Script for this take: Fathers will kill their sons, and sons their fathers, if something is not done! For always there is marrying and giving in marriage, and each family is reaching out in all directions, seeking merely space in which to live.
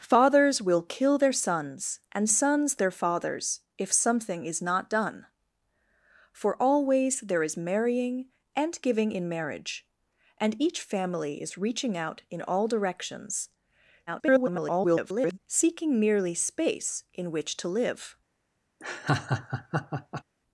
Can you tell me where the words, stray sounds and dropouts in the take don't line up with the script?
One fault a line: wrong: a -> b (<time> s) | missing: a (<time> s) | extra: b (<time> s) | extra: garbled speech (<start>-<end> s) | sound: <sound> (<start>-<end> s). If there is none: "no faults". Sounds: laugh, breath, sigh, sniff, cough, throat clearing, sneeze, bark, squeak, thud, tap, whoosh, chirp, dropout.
extra: garbled speech (14.1-15.4 s)
sound: laugh (18.8-20.2 s)